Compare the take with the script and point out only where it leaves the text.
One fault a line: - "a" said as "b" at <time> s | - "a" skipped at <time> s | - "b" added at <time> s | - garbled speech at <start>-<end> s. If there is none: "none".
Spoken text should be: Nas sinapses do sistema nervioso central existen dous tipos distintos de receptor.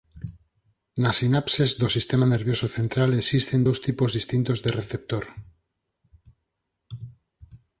none